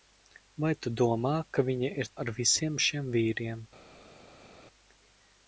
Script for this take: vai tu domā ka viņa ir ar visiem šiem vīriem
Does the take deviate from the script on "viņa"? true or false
false